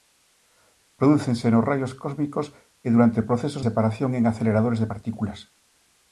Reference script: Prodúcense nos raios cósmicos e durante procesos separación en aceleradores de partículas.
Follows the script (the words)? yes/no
yes